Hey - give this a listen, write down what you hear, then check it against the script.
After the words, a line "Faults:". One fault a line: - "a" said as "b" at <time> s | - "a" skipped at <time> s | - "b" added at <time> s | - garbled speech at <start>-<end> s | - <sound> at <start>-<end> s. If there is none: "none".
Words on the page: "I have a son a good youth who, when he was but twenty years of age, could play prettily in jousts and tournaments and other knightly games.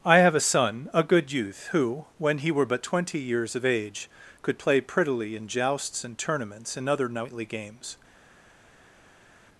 "I have a son a good youth who, when he were but twenty years of age, could play prettily in jousts and tournaments and other knightly games.
Faults:
- "was" said as "were" at 2.5 s